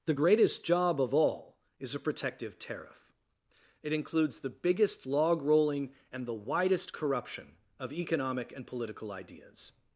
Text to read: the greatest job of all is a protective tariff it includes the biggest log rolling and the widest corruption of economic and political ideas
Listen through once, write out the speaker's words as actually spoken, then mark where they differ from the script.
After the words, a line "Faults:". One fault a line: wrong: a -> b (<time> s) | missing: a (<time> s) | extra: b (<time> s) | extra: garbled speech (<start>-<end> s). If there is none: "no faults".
the greatest job of all is a protective tariff it includes the biggest log rolling and the widest corruption of economic and political ideas
Faults:
no faults